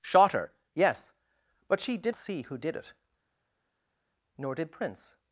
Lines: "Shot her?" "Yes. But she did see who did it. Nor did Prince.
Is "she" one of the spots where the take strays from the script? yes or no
no